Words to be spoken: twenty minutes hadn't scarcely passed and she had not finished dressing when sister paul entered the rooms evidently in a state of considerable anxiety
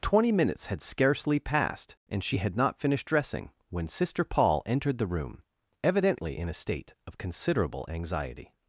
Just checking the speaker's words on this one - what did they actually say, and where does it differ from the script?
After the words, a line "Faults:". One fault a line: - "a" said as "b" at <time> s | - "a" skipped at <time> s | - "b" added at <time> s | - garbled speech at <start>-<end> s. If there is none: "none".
twenty minutes had scarcely passed and she had not finished dressing when sister paul entered the room evidently in a state of considerable anxiety
Faults:
- "hadn't" said as "had" at 0.7 s
- "rooms" said as "room" at 5.1 s